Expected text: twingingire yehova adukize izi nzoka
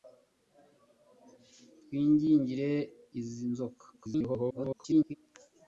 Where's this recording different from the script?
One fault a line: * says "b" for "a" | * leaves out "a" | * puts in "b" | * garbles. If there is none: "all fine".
* leaves out "yehova adukize"
* garbles